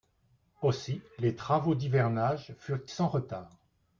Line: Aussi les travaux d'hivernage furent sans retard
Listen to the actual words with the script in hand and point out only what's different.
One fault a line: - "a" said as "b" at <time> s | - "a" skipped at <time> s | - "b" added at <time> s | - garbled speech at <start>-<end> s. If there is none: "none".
none